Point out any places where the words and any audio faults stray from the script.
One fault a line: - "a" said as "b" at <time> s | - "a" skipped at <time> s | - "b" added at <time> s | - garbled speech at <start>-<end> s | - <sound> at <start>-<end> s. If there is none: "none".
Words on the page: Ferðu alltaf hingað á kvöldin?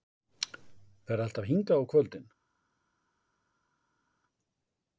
none